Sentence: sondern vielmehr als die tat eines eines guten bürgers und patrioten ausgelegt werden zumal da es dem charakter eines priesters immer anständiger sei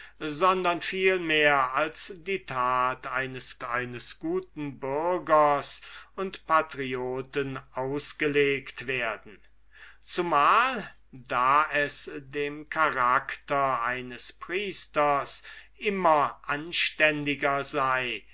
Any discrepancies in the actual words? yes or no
no